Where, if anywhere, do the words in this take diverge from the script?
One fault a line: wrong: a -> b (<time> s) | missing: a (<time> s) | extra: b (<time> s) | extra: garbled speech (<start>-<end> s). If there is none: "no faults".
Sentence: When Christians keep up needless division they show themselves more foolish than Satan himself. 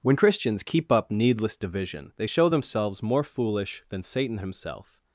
no faults